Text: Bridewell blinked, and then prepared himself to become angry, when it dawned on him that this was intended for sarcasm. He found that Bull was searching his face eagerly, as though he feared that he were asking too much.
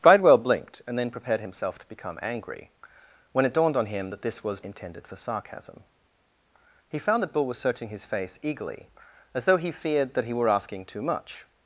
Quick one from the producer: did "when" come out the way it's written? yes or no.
yes